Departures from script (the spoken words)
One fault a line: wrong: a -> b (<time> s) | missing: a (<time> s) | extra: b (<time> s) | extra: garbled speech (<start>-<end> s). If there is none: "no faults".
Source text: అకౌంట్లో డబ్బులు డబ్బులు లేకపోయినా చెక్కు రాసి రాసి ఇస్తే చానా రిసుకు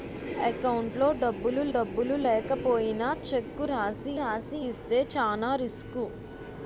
no faults